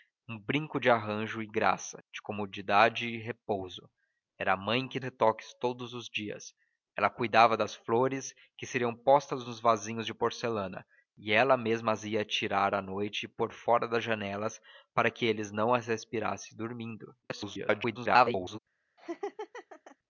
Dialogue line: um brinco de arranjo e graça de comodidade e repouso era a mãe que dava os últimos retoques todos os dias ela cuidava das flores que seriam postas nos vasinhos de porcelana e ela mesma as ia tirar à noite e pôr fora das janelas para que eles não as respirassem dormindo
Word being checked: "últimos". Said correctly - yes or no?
no